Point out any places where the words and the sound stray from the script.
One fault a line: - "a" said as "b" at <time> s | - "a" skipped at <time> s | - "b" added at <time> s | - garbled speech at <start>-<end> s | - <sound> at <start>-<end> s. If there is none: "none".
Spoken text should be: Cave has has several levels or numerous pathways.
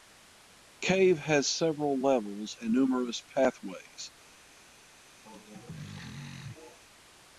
- "has" skipped at 1.5 s
- "or" said as "and" at 2.6 s
- throat clearing at 5.3-6.8 s